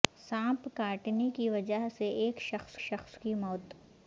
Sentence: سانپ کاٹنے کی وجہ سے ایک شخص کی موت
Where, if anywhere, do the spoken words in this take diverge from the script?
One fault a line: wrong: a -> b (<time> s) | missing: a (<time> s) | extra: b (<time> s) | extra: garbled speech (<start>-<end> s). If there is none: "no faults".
extra: شخص (2.8 s)